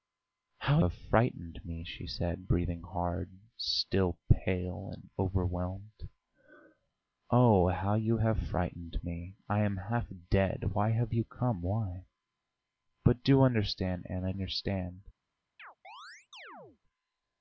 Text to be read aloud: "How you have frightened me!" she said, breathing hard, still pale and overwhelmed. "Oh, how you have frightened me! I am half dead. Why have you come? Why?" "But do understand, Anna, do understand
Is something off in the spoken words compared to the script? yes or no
yes